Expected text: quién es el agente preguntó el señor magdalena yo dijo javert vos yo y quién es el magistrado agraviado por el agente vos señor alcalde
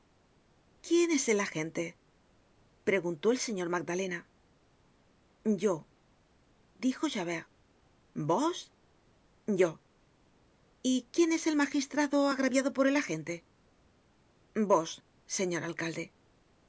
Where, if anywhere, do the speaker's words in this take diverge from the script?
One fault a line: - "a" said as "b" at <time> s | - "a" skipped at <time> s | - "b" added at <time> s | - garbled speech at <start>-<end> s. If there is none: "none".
none